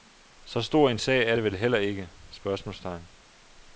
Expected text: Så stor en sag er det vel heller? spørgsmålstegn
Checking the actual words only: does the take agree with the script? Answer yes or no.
no